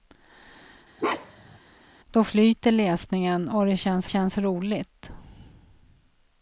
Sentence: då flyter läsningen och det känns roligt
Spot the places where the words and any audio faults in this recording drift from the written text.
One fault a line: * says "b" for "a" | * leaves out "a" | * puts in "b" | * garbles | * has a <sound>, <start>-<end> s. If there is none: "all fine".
* has a bark, 1.0-1.6 s
* puts in "känns"